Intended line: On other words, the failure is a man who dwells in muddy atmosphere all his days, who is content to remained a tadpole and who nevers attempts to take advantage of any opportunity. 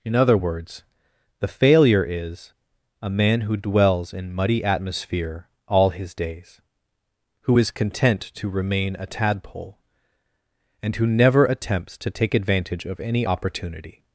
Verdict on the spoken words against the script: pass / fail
fail